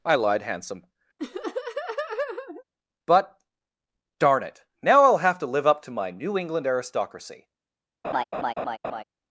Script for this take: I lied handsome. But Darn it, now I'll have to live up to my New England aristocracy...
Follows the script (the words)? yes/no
yes